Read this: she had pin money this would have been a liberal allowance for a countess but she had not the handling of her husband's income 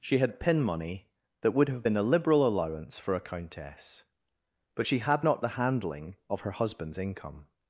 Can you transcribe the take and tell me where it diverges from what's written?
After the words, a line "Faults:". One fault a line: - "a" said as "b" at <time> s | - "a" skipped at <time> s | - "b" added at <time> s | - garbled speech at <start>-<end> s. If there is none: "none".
she had pin money that would have been a liberal allowance for a countess but she had not the handling of her husband's income
Faults:
- "this" said as "that" at 1.4 s